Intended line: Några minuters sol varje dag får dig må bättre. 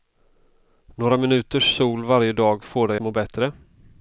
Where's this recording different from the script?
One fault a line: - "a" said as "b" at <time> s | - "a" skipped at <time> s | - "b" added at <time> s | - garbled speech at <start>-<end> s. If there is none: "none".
none